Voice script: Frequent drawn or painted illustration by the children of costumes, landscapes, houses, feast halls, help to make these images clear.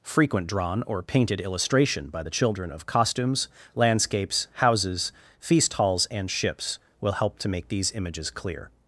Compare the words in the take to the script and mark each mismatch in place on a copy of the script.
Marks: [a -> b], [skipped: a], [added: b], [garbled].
Frequent drawn or painted illustration by the children of costumes, landscapes, houses, feast halls, [added: and ships will] help to make these images clear.